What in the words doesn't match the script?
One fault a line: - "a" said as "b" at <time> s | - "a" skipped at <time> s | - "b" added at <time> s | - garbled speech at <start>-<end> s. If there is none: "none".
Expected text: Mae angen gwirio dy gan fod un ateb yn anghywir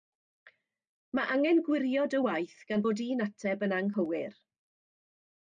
- "waith" added at 2.3 s